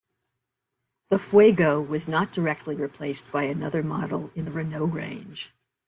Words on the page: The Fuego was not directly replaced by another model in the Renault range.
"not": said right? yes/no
yes